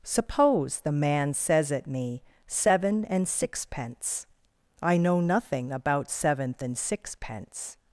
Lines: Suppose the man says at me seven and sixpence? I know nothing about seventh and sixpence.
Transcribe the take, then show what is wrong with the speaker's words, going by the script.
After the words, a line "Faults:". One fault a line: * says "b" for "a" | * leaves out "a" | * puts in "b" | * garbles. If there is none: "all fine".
Suppose the man says at me seven and sixpence? I know nothing about seventh and sixpence.
Faults:
all fine